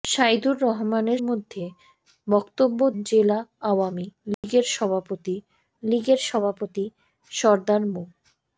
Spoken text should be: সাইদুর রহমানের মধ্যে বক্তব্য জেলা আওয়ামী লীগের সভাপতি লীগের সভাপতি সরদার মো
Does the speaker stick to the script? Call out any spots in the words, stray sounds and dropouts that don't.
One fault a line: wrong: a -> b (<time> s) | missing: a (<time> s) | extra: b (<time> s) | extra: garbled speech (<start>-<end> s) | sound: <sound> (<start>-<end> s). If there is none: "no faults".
sound: dropout (4.3-4.4 s)